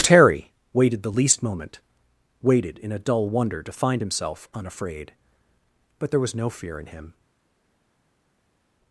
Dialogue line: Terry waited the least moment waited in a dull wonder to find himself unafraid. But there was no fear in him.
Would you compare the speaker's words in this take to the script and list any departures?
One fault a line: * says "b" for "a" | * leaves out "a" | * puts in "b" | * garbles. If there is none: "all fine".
all fine